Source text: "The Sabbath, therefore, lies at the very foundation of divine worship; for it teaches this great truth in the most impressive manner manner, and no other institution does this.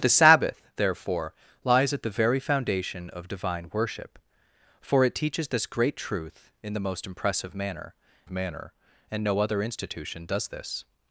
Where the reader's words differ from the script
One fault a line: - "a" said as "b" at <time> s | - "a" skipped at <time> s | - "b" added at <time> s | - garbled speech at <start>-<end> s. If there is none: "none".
none